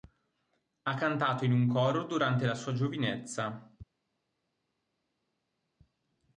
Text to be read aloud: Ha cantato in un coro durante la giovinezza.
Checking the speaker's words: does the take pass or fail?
fail